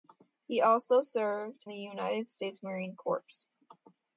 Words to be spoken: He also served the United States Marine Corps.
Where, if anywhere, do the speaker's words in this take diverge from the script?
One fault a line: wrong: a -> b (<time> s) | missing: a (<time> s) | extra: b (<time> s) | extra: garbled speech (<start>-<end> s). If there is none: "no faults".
no faults